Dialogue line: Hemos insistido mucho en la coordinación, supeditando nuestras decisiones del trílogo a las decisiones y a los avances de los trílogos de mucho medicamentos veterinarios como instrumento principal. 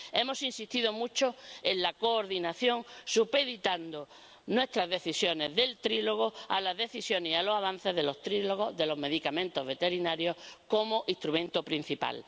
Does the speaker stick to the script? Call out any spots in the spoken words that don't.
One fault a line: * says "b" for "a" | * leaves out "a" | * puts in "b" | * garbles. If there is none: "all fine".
* says "los" for "mucho"